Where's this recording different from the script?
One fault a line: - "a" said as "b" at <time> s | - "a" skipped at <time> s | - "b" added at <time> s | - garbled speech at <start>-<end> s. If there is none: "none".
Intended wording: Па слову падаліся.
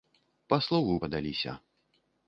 none